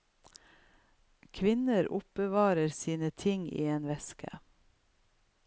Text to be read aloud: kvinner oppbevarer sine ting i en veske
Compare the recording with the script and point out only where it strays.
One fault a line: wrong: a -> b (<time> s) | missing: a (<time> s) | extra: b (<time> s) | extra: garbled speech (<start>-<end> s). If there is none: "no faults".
no faults